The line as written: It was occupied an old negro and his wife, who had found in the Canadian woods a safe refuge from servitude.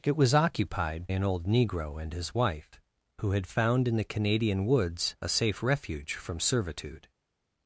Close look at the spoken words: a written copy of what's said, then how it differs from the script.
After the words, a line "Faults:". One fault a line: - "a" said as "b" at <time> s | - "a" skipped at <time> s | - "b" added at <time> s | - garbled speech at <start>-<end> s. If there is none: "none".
It was occupied an old negro and his wife, who had found in the Canadian woods a safe refuge from servitude.
Faults:
none